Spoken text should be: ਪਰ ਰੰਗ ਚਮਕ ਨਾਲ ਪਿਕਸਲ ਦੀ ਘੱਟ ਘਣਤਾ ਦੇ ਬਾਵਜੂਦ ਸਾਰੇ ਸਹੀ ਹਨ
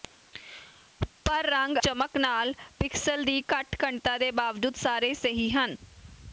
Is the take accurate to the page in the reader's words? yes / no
yes